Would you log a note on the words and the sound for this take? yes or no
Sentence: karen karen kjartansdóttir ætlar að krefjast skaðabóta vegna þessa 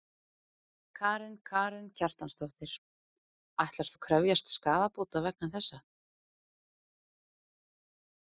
no